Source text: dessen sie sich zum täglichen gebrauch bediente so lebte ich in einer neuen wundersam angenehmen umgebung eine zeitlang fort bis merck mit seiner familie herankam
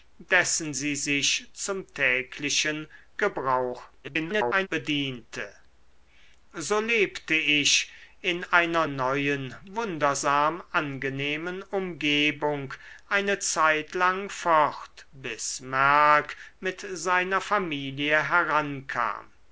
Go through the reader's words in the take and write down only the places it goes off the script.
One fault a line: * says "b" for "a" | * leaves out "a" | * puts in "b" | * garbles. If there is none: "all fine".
* garbles